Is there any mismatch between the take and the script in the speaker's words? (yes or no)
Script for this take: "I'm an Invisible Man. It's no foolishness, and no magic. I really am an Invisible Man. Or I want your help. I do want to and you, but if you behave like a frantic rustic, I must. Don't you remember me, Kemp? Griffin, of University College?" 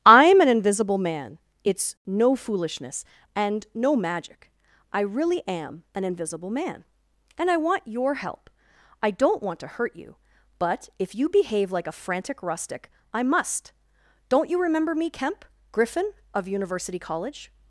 yes